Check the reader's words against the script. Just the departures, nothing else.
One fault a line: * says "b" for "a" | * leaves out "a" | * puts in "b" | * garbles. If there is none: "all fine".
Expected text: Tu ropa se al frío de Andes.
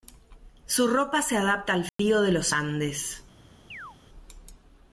* says "Su" for "Tu"
* puts in "adapta"
* puts in "los"